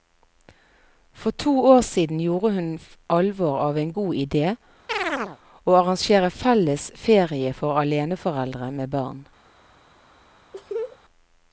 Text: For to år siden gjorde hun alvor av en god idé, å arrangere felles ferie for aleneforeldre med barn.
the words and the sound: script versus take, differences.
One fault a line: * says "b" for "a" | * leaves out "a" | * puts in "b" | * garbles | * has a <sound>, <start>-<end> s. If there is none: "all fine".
* has a chirp, 4.9-5.4 s
* has a laugh, 10.5-11.0 s